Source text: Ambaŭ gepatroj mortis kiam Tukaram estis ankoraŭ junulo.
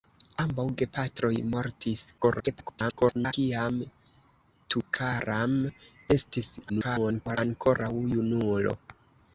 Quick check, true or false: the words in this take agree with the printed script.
false